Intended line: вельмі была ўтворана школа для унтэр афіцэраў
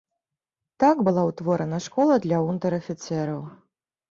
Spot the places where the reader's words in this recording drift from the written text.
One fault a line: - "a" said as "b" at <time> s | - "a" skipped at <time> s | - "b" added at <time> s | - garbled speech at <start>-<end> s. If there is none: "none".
- "вельмі" said as "так" at 0.8 s